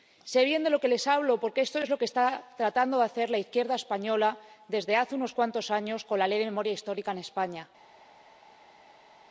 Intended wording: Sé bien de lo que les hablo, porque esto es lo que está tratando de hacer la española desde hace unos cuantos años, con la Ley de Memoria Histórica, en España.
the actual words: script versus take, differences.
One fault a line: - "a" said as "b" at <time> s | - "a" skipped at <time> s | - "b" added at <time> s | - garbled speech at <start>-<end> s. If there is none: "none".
- "izquierda" added at 3.4 s